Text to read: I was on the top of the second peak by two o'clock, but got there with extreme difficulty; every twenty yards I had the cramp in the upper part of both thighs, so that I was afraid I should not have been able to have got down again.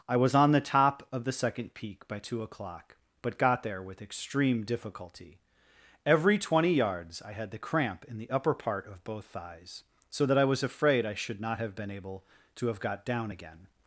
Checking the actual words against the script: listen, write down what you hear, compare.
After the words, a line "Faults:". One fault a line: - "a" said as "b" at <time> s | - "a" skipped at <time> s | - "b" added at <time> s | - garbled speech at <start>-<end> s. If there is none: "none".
I was on the top of the second peak by two o'clock, but got there with extreme difficulty; every twenty yards I had the cramp in the upper part of both thighs, so that I was afraid I should not have been able to have got down again.
Faults:
none